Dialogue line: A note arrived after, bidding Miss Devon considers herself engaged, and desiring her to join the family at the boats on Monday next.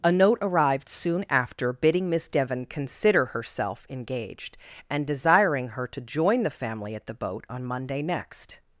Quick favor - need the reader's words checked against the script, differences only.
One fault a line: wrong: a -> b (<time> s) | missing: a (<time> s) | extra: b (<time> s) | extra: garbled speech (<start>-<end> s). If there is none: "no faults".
extra: soon (0.9 s)
wrong: considers -> consider (2.6 s)
wrong: boats -> boat (7.1 s)